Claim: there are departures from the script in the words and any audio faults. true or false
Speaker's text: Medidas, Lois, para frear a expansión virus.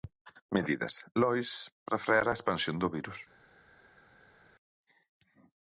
true